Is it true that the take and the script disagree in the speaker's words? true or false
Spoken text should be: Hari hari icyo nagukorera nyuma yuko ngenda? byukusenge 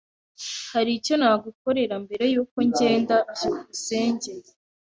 true